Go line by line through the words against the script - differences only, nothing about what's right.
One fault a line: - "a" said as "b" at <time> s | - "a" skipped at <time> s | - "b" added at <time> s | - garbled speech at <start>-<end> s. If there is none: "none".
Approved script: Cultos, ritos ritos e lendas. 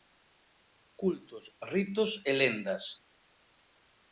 - "ritos" skipped at 2.1 s